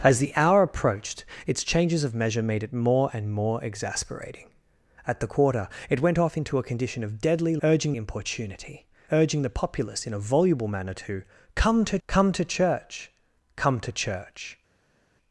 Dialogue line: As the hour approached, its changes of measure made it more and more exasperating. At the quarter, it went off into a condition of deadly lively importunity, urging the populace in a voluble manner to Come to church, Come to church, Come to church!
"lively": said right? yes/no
no